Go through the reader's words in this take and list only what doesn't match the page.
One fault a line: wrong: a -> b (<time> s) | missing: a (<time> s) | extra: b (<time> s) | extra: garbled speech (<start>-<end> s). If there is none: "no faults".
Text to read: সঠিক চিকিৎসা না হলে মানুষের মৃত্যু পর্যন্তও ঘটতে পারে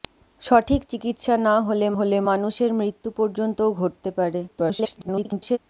extra: হলে (2.0 s)
extra: garbled speech (4.5-5.6 s)